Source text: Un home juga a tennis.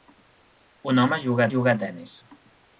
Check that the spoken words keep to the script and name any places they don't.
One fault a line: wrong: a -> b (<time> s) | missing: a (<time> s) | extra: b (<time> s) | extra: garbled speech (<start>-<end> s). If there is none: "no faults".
extra: juga (1.5 s)